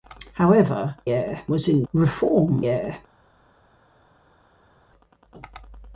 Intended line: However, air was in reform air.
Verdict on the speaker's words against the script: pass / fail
pass